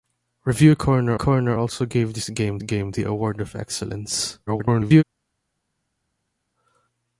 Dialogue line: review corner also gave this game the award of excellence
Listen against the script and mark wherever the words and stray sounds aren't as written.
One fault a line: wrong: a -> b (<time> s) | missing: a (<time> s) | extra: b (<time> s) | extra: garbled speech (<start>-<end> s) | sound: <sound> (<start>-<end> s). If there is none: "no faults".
extra: corner (1.1 s)
extra: game (2.6 s)
extra: garbled speech (4.5-5.0 s)